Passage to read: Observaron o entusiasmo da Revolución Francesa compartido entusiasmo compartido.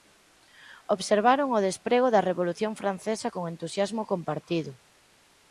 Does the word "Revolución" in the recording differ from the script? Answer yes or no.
no